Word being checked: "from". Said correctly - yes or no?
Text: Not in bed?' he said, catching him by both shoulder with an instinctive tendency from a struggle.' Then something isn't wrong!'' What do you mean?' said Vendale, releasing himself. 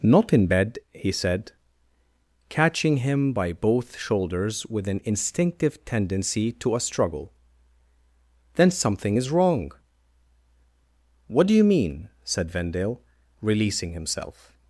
no